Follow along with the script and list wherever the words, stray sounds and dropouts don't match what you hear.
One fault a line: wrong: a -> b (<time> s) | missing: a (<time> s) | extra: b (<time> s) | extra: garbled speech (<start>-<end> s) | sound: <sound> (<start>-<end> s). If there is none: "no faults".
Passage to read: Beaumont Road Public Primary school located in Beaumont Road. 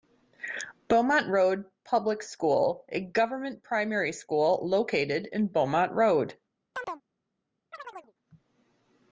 extra: School a government (2.2 s)
sound: chirp (6.7-7.0 s)
sound: chirp (7.7-8.1 s)